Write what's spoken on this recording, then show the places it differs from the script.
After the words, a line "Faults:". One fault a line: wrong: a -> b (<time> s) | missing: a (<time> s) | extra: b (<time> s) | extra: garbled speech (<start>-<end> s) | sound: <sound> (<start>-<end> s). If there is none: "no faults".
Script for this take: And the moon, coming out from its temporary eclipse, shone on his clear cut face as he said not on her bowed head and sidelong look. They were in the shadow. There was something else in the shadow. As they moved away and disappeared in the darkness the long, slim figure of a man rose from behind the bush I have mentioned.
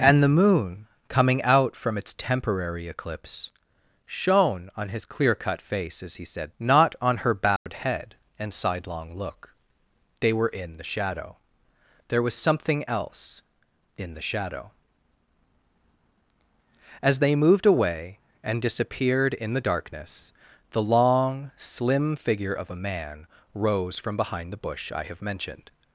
And the moon, coming out from its temporary eclipse, shone on his clear cut face as he said not on her bowed head and sidelong look. They were in the shadow. There was something else in the shadow. As they moved away and disappeared in the darkness the long, slim figure of a man rose from behind the bush I have mentioned.
Faults:
sound: dropout (7.6-7.7 s)